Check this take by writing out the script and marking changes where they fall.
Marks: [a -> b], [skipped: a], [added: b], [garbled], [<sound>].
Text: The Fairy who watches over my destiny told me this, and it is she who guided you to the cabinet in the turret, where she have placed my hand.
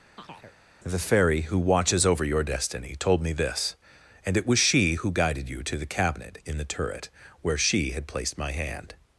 [chirp] The Fairy who watches over [my -> your] destiny told me this, and it [is -> was] she who guided you to the cabinet in the turret, where she [have -> had] placed my hand.